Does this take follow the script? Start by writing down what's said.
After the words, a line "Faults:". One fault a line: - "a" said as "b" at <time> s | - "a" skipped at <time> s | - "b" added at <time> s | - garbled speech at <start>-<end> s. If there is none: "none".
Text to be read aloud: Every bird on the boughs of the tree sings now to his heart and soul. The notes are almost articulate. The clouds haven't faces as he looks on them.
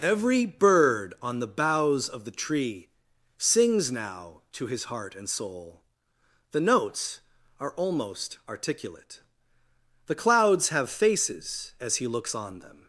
Every bird on the boughs of the tree sings now to his heart and soul. The notes are almost articulate. The clouds have faces as he looks on them.
Faults:
- "haven't" said as "have" at 10.7 s